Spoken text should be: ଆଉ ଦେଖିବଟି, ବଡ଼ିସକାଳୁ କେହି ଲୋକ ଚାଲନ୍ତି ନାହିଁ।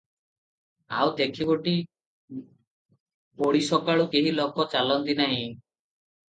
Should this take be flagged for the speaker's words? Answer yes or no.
no